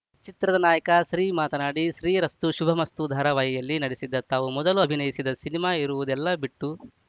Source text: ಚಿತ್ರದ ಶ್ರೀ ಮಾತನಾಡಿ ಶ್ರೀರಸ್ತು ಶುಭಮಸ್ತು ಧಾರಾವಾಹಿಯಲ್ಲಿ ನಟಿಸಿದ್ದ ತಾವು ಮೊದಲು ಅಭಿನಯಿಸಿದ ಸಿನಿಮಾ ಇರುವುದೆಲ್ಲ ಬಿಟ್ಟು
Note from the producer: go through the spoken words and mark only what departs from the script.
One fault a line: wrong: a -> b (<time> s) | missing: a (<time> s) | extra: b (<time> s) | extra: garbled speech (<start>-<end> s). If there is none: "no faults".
extra: ನಾಯಕ (0.6 s)